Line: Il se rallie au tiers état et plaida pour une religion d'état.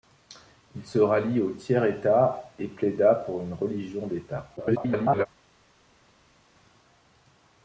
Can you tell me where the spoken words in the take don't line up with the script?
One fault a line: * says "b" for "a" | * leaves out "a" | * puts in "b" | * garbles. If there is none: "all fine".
* garbles